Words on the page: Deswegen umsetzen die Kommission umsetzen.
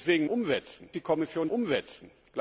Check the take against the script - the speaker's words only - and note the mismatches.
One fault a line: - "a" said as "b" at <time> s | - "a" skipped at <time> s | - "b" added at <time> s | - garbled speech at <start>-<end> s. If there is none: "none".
none